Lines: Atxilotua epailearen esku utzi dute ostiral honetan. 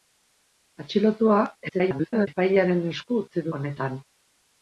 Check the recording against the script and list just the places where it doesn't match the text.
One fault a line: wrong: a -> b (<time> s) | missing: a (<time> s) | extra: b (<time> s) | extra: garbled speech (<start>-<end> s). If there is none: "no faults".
extra: garbled speech (1.7-2.3 s)
missing: dute ostiral (3.5 s)